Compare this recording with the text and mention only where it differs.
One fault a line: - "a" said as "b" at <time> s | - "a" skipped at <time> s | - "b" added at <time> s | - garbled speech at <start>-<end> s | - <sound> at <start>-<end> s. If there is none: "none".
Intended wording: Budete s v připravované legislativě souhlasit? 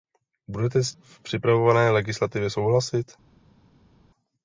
none